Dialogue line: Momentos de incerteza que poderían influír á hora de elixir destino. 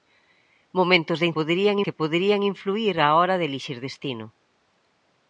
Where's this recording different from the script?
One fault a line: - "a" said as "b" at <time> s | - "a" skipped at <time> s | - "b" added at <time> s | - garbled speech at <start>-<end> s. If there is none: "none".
- "incerteza" said as "poderían" at 1.4 s